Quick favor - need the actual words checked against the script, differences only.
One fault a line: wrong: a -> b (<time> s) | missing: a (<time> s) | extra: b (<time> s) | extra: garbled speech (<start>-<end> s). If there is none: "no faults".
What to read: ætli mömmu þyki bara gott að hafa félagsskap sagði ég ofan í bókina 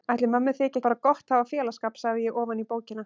no faults